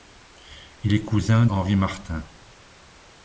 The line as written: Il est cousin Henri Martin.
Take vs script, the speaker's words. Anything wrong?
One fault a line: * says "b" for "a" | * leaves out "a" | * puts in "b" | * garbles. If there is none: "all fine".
all fine